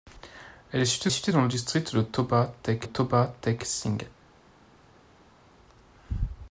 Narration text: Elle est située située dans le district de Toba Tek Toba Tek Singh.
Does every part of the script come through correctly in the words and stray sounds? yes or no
yes